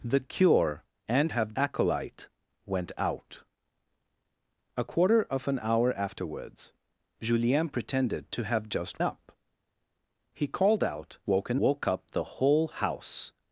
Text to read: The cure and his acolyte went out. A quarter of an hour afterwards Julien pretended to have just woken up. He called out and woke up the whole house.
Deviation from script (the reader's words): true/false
true